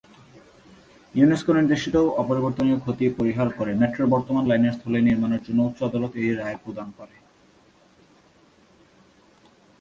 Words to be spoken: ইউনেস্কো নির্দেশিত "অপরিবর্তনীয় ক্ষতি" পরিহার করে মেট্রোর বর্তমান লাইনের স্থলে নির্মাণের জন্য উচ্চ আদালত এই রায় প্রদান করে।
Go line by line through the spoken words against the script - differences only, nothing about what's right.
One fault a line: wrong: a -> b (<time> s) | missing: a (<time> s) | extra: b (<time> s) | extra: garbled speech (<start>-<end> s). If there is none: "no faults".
no faults